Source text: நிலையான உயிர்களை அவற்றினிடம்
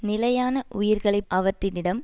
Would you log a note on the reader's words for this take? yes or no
no